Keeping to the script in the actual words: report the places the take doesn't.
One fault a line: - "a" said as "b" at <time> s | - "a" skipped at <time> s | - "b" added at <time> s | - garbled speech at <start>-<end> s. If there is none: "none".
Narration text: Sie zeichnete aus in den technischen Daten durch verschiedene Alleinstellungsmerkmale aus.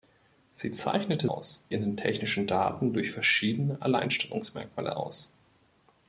none